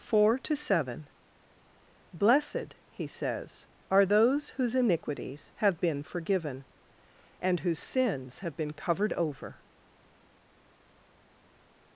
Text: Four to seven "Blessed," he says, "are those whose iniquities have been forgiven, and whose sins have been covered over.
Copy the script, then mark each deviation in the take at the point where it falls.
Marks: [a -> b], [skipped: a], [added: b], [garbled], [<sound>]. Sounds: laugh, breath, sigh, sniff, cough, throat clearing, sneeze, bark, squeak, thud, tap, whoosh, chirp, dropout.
Four to seven "Blessed," he says, "are those whose iniquities have been forgiven, and whose sins have been covered over.